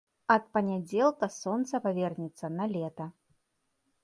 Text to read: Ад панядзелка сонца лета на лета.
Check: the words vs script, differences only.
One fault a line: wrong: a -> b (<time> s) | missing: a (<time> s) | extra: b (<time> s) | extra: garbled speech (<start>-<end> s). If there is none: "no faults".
wrong: лета -> павернецца (1.9 s)